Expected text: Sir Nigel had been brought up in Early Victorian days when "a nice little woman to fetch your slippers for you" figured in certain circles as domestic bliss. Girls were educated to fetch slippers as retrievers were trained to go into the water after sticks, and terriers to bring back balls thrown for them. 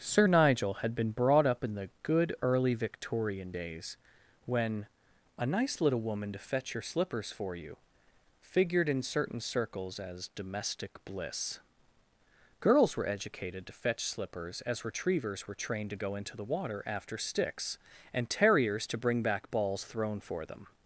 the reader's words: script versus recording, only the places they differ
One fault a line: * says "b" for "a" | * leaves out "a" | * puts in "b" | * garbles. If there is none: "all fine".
* puts in "the good"